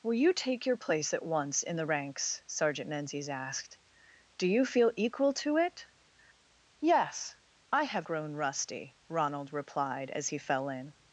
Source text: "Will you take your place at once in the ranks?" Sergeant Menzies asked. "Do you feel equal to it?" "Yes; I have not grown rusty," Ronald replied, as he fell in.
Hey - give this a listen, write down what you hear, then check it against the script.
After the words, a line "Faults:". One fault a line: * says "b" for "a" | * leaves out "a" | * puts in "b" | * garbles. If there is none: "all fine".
"Will you take your place at once in the ranks?" Sergeant Menzies asked. "Do you feel equal to it?" "Yes; I have grown rusty," Ronald replied, as he fell in.
Faults:
* leaves out "not"